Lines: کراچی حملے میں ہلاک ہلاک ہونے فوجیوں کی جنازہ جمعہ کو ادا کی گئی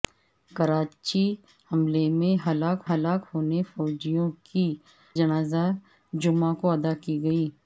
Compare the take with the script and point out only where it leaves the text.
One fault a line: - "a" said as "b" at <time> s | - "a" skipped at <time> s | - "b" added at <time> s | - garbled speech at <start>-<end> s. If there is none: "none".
none